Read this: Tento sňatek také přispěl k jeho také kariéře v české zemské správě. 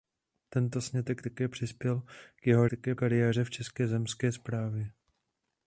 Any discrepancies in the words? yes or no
no